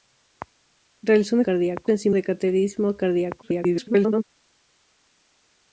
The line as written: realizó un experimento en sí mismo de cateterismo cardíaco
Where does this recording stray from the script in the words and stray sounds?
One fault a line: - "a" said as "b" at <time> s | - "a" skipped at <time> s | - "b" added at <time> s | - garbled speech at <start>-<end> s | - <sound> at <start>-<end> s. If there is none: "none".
- "experimento" said as "cardíaco" at 1.4 s
- "mismo" skipped at 2.1 s
- garbled speech at 3.4-4.2 s